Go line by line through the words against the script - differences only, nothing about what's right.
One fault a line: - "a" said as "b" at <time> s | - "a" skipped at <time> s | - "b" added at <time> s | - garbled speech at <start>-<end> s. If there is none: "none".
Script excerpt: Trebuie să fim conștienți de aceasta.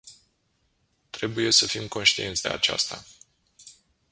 none